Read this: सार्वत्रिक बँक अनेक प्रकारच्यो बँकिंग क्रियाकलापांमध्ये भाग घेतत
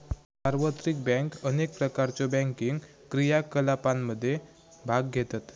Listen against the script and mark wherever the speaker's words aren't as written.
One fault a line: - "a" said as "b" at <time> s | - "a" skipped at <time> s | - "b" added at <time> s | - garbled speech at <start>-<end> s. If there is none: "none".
none